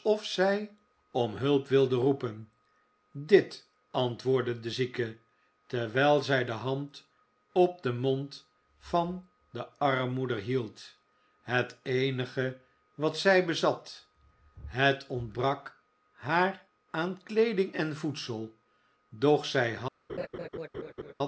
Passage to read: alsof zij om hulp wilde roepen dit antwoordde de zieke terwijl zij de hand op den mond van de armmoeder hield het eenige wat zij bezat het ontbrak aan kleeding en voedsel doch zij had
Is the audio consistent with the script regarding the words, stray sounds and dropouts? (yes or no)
no